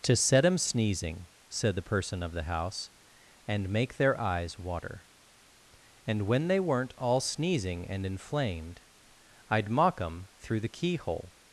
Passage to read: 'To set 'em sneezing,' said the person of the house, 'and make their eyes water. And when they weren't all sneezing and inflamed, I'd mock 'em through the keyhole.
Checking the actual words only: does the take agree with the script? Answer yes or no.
yes